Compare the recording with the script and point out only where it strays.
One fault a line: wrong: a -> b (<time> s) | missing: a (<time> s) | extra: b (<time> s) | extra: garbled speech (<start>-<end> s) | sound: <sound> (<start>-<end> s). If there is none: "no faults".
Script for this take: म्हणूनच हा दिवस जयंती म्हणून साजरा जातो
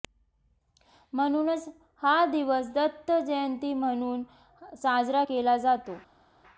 extra: दत्त (2.7 s)
extra: केला (5.2 s)